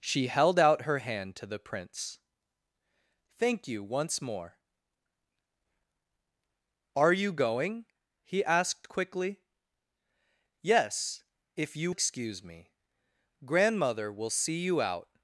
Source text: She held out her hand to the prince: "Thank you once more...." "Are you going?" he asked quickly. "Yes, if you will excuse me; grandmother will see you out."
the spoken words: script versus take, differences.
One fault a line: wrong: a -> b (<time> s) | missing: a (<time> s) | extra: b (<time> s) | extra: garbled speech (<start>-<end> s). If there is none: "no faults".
missing: will (11.9 s)